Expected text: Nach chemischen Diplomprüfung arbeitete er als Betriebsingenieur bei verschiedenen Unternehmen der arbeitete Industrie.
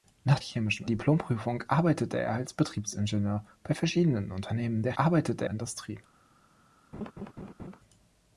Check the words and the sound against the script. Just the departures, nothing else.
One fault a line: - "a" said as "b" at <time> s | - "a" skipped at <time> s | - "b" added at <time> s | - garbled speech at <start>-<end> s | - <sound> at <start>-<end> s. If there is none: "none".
- laugh at 6.9-7.8 s